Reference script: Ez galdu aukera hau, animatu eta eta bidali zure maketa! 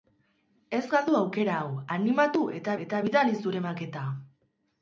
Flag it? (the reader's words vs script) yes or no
no